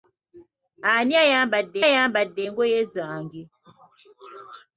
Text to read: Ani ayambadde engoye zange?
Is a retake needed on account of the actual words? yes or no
yes